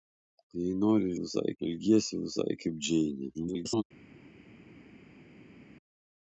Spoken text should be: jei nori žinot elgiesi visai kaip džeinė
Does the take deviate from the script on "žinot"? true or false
true